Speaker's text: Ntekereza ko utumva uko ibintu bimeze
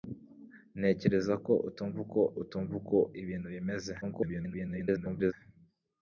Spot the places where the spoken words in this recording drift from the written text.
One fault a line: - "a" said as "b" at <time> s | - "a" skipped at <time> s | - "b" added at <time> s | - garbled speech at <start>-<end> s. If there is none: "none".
- "utumva uko" added at 2.4 s
- garbled speech at 4.0-5.3 s